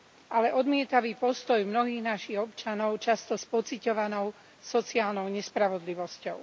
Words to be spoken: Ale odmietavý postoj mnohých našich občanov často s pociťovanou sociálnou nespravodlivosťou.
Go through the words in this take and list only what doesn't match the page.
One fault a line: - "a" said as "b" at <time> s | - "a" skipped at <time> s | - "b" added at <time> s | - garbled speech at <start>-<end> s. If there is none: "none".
none